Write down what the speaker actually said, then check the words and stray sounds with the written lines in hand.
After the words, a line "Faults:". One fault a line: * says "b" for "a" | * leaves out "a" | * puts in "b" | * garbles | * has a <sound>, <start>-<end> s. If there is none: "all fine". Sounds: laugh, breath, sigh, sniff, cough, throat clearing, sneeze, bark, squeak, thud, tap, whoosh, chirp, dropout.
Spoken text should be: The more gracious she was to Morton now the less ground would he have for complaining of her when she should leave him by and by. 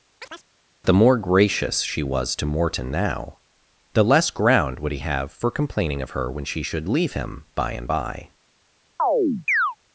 The more gracious she was to Morton now the less ground would he have for complaining of her when she should leave him by and by.
Faults:
* has a chirp, 0.2-0.5 s
* has a chirp, 9.0-9.8 s